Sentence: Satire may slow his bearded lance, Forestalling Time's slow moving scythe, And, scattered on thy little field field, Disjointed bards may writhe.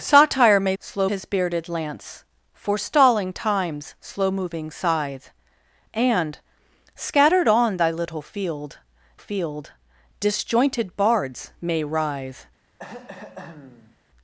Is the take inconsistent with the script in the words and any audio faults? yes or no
yes